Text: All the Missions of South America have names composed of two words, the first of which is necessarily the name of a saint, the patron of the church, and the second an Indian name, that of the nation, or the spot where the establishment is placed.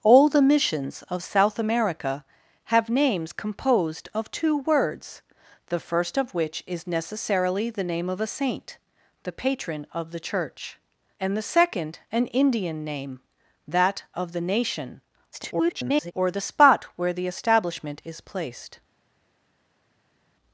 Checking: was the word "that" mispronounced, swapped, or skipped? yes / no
no